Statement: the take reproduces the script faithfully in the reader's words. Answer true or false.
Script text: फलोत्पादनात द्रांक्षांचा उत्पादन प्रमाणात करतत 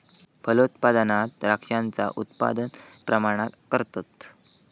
true